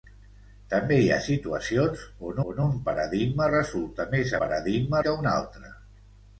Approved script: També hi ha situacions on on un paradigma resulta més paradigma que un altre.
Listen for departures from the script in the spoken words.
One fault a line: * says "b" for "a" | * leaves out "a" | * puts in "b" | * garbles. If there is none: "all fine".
all fine